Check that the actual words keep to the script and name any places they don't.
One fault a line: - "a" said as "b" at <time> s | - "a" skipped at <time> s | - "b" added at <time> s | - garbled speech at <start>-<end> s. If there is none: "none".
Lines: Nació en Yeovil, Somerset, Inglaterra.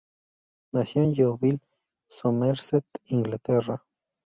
none